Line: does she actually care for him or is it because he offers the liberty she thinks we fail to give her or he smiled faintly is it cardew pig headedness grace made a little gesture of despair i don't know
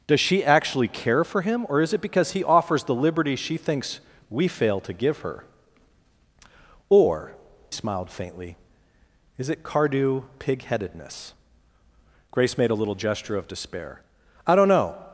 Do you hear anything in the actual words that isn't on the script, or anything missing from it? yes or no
yes